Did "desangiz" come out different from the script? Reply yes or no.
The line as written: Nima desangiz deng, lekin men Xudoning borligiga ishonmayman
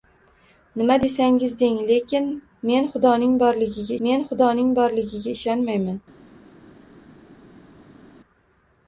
no